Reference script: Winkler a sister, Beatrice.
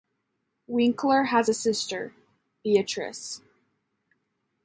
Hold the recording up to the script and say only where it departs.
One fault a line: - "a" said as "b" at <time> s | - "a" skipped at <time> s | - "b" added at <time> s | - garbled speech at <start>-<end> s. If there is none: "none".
- "has" added at 1.2 s